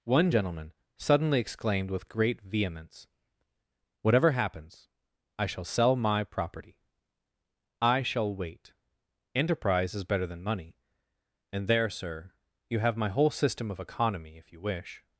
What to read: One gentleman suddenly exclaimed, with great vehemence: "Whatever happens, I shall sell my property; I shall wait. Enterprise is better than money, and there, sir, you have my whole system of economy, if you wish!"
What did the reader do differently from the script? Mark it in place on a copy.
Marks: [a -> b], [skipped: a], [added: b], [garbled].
One gentleman suddenly exclaimed, with great vehemence: "Whatever happens, I shall sell my property; I shall wait. Enterprise is better than money, and there, sir, you have my whole system of economy, if you wish!"